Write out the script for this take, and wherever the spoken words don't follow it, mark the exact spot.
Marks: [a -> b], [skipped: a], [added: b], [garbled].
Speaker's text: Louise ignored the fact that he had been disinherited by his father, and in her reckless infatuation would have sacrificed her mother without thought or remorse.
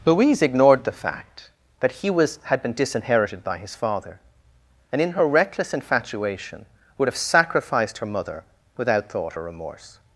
Louise ignored the fact that he [added: was] had been disinherited by his father, and in her reckless infatuation would have sacrificed her mother without thought or remorse.